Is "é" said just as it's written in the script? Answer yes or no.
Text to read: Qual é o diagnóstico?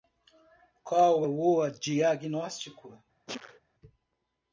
no